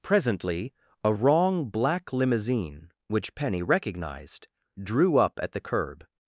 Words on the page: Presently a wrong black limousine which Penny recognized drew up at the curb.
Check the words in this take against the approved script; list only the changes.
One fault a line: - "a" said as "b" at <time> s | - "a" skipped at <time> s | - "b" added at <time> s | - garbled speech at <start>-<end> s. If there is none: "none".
none